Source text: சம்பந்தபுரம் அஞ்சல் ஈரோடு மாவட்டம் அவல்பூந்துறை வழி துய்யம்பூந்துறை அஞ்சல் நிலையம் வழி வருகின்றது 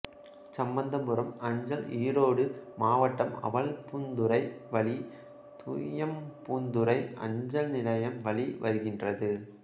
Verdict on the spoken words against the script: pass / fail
pass